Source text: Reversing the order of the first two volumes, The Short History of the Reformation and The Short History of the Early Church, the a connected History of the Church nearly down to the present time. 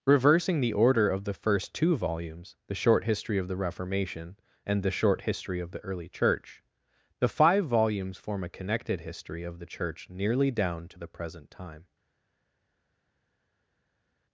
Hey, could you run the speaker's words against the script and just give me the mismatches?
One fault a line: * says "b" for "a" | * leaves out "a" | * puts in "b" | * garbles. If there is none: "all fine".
* puts in "five volumes form"